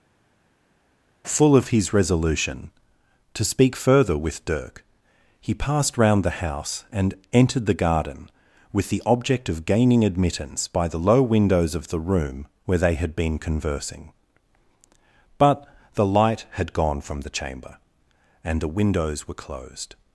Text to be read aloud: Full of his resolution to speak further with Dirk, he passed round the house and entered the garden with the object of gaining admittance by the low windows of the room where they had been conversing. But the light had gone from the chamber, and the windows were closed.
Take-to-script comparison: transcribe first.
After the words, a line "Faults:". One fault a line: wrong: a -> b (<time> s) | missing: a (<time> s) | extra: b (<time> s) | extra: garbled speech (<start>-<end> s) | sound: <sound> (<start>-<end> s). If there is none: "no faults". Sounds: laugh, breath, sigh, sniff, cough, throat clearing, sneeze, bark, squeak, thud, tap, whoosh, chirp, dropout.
Full of his resolution to speak further with Dirk, he passed round the house and entered the garden with the object of gaining admittance by the low windows of the room where they had been conversing. But the light had gone from the chamber, and the windows were closed.
Faults:
no faults